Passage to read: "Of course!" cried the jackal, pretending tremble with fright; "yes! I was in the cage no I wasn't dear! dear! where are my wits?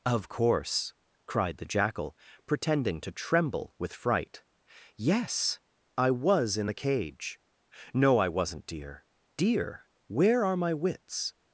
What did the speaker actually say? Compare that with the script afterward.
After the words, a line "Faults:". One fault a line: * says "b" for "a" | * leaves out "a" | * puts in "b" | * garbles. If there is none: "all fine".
"Of course!" cried the jackal, pretending to tremble with fright; "yes! I was in the cage no I wasn't dear! dear! where are my wits?
Faults:
* puts in "to"